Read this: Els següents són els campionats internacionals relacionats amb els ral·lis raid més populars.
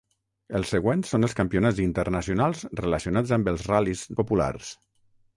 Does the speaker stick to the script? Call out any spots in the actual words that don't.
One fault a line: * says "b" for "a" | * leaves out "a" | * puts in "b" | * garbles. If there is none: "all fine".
* leaves out "raid més"